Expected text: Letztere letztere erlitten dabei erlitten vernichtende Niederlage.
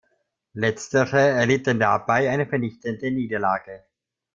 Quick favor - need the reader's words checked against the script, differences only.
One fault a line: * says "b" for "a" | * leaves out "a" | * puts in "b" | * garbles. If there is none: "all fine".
* leaves out "letztere"
* says "eine" for "erlitten"